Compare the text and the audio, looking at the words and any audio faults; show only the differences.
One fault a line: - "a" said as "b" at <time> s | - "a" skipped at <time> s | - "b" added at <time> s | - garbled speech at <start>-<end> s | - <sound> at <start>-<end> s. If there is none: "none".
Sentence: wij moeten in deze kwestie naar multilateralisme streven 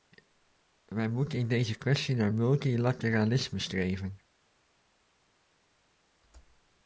none